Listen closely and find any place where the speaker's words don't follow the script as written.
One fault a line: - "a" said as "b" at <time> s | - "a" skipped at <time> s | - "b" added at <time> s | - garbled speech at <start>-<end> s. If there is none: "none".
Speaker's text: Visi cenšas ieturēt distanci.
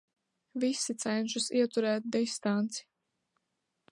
none